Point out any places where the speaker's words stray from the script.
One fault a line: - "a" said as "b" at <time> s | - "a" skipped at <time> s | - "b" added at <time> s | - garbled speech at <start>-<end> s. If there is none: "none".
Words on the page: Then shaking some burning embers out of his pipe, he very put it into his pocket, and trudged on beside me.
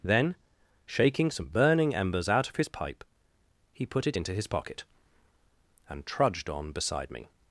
- "very" skipped at 3.9 s